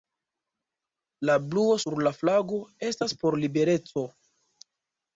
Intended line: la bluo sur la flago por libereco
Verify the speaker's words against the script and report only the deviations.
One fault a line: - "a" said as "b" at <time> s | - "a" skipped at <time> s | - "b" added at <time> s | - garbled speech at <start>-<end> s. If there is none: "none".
- "estas" added at 2.9 s